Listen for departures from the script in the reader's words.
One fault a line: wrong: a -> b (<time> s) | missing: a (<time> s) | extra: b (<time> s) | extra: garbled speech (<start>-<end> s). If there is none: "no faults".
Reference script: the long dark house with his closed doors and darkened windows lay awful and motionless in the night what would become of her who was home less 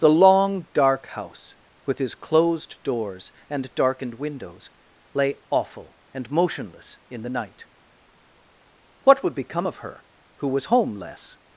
no faults